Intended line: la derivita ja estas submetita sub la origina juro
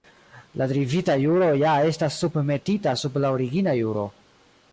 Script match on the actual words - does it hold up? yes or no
no